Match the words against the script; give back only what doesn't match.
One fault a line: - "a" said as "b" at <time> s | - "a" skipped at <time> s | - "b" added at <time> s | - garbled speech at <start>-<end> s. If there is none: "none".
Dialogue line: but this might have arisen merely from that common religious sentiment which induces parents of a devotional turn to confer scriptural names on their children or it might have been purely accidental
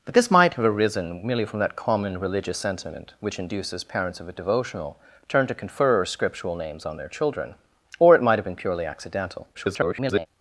- garbled speech at 9.5-10.3 s